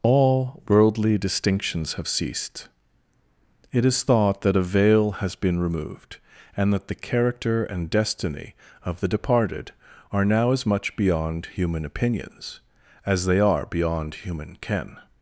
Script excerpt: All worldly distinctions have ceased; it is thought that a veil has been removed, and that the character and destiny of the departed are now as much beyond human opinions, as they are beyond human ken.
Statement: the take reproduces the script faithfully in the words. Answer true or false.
true